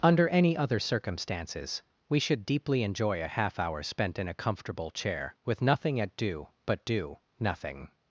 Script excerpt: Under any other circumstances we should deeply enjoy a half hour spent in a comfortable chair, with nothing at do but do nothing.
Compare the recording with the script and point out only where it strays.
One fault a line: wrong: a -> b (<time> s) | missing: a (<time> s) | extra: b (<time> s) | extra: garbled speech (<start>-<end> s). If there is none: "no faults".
no faults